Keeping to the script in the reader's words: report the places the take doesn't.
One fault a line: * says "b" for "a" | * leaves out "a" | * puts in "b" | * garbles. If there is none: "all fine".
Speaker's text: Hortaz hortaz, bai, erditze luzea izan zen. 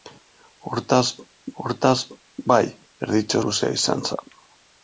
all fine